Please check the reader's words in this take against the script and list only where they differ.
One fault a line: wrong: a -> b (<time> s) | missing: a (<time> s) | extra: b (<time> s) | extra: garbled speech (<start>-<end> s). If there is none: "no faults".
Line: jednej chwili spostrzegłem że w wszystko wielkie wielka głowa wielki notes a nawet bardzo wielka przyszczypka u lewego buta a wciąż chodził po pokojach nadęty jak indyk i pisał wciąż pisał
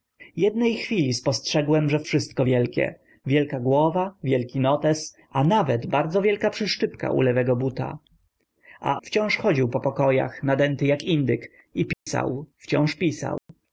no faults